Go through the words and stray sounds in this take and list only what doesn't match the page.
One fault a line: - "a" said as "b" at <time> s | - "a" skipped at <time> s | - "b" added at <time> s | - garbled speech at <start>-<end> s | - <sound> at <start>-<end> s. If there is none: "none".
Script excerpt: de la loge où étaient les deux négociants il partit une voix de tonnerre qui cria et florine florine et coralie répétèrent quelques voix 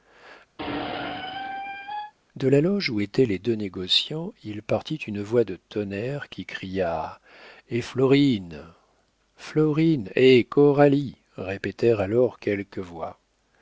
- squeak at 0.6-2.1 s
- "alors" added at 12.0 s